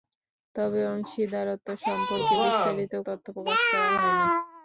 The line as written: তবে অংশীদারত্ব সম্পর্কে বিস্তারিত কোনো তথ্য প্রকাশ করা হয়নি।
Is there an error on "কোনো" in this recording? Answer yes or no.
yes